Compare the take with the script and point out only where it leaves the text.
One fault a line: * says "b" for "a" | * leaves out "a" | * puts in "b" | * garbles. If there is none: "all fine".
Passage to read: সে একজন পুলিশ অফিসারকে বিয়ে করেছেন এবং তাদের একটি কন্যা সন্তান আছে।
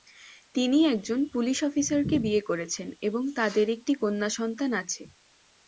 * says "তিনি" for "সে"